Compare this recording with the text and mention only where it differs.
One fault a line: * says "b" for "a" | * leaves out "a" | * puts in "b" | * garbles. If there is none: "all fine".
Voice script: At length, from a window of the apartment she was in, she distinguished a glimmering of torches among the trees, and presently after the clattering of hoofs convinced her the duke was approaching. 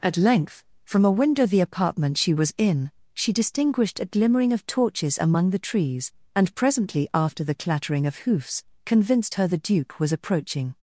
* leaves out "of"